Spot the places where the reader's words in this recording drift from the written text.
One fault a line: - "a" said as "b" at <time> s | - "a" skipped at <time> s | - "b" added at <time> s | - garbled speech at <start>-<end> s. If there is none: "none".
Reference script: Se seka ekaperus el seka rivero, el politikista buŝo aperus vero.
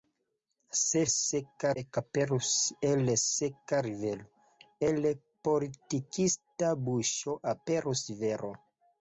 none